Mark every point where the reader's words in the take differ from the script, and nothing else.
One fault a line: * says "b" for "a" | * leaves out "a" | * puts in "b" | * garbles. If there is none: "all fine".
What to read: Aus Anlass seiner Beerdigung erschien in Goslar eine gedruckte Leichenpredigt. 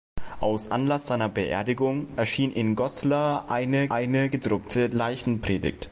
* puts in "eine"